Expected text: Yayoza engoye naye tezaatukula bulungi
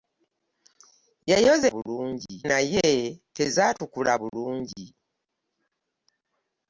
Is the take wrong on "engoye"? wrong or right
wrong